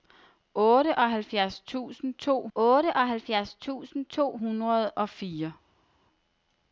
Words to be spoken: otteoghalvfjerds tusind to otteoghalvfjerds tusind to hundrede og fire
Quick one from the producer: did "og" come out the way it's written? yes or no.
yes